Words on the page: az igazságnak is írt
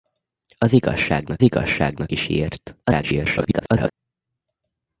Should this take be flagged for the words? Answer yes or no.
yes